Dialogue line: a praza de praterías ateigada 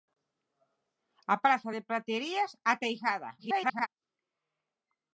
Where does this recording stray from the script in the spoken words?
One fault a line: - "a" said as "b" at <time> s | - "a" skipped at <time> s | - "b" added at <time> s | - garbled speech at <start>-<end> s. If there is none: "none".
- garbled speech at 3.4-3.9 s